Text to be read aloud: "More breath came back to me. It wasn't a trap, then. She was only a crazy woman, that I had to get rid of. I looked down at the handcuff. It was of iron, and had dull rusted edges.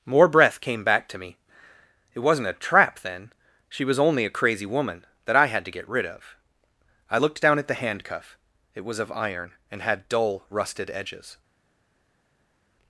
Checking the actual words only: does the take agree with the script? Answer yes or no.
yes